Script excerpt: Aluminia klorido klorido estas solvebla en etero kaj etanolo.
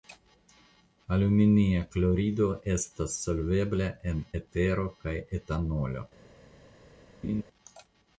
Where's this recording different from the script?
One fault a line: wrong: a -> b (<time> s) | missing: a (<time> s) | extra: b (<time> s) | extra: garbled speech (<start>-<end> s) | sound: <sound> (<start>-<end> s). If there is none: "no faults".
missing: klorido (2.5 s)
sound: laugh (7.2-7.4 s)